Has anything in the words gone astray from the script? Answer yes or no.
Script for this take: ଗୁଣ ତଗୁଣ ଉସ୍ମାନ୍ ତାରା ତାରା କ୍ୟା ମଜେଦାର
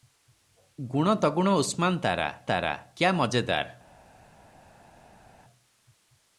no